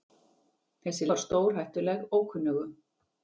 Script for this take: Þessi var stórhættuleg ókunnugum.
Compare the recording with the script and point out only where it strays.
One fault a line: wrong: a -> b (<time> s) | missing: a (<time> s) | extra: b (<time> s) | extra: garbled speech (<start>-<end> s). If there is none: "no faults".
no faults